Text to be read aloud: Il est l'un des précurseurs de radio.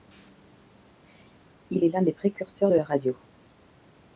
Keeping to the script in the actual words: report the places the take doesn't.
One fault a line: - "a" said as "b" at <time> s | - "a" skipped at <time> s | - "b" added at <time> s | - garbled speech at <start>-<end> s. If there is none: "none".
- "la" added at 2.7 s